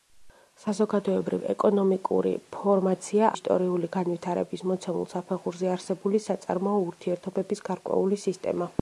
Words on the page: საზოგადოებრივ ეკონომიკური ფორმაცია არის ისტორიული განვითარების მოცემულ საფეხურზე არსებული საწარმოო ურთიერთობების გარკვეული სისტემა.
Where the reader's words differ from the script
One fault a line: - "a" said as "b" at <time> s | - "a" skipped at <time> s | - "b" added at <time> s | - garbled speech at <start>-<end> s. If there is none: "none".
- "არის" skipped at 3.3 s